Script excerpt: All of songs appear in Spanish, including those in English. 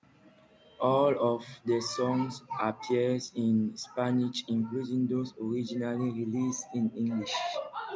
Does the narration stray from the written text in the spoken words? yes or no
yes